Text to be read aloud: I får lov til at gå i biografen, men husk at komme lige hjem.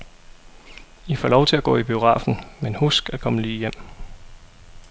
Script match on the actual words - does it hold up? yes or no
yes